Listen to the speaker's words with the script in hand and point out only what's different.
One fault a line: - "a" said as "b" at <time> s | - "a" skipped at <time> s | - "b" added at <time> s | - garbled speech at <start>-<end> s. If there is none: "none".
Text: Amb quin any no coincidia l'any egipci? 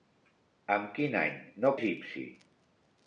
- "coincidia l'any" skipped at 1.8 s